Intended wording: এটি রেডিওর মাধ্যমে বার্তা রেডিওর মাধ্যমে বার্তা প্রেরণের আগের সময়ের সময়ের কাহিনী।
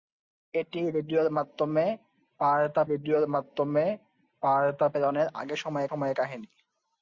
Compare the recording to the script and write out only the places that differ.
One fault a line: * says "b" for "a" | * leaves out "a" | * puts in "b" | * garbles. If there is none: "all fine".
all fine